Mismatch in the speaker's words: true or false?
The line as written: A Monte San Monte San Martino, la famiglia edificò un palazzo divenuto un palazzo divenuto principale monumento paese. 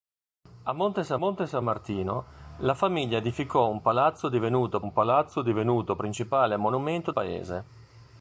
false